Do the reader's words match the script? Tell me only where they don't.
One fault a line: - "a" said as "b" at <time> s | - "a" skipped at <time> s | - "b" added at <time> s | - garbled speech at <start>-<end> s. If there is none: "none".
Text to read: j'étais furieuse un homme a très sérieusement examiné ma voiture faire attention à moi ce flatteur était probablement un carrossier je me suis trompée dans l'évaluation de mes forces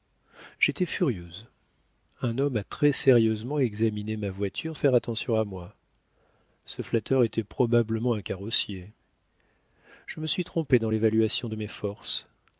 none